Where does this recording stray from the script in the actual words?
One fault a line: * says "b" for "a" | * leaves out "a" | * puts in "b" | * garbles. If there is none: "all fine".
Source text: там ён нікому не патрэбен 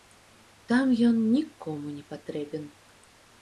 all fine